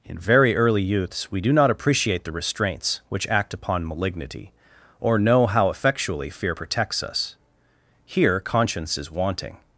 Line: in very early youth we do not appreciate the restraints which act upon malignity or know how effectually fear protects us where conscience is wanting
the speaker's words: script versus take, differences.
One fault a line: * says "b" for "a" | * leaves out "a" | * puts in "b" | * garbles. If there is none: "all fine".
* says "youths" for "youth"
* says "here" for "where"